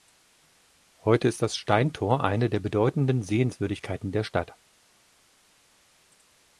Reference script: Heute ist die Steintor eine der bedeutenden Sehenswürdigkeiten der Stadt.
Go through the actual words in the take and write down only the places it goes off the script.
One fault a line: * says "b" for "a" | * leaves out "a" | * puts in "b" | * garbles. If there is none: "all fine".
* says "das" for "die"